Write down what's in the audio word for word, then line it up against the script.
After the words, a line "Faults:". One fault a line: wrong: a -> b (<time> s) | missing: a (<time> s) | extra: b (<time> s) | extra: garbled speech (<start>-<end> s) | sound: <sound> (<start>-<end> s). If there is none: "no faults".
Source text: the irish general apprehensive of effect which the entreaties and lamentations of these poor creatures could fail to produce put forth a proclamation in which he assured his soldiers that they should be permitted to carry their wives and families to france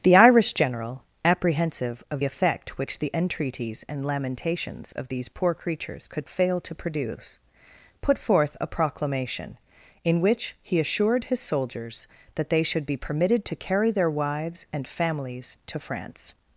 the irish general apprehensive of effect which the entreaties and lamentations of these poor creatures could fail to produce put forth a proclamation in which he assured his soldiers that they should be permitted to carry their wives and families to france
Faults:
no faults